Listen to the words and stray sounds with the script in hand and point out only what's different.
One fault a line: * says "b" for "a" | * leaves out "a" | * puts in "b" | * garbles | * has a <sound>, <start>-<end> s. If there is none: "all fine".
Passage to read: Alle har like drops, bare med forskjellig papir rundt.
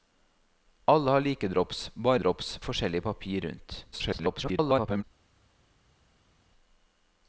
* says "drops" for "med"
* garbles